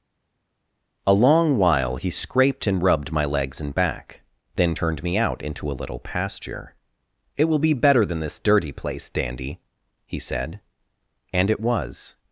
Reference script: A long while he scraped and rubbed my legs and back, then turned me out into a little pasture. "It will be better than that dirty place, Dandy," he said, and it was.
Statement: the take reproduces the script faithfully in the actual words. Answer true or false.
false